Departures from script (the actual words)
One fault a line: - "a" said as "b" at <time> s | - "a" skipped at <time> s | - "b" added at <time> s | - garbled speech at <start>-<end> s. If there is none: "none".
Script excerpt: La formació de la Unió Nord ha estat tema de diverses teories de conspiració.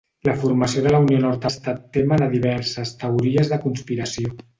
none